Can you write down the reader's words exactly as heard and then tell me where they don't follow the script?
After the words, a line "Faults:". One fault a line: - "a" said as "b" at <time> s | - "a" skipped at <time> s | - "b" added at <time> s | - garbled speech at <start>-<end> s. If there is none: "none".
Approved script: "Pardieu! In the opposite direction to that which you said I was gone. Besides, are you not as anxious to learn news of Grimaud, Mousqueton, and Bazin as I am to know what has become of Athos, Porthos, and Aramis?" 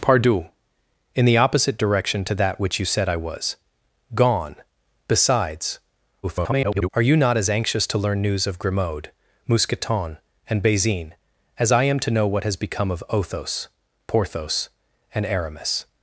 "Pardieu! In the opposite direction to that which you said I was gone. Besides, [garbled] are you not as anxious to learn news of Grimaud, Mousqueton, and Bazin as I am to know what has become of Athos, Porthos, and Aramis?"
Faults:
- garbled speech at 6.2-6.9 s